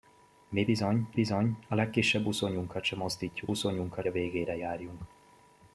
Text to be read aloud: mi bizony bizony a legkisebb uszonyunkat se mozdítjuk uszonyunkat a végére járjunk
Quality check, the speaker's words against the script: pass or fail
pass